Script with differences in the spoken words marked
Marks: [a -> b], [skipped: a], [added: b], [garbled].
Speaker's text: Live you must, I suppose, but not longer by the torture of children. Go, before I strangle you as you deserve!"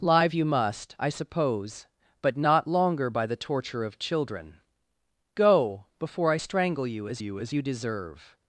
Live you must, I suppose, but not longer by the torture of children. Go, before I strangle you as you [added: as you] deserve!"